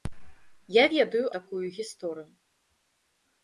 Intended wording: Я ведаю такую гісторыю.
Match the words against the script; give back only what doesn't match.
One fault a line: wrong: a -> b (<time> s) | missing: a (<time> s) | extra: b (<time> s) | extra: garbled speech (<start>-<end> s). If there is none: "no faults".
no faults